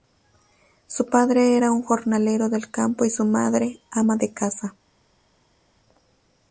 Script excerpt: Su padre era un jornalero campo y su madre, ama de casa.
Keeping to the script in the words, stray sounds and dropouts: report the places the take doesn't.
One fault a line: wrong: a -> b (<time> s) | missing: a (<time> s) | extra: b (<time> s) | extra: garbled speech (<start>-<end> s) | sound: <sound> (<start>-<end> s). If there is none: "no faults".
extra: del (2.5 s)